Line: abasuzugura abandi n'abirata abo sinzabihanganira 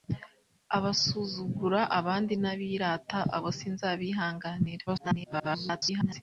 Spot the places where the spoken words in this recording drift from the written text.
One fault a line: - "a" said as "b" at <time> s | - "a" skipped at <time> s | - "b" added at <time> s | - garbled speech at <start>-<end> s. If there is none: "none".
- garbled speech at 4.9-6.2 s